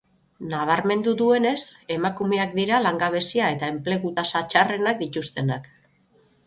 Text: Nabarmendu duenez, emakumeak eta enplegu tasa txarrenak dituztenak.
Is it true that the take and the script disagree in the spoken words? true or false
true